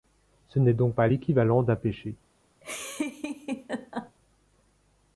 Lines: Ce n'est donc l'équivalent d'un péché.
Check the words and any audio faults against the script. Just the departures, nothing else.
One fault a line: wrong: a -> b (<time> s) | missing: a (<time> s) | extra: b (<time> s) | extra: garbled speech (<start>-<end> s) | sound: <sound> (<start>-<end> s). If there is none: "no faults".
extra: pas (0.9 s)
sound: laugh (2.6-4.2 s)